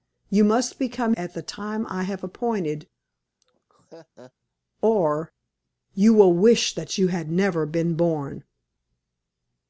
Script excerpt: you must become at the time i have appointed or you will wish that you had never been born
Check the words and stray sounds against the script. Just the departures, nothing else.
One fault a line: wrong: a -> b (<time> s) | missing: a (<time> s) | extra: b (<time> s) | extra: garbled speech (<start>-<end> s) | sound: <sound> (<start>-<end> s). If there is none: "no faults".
sound: laugh (3.4-4.3 s)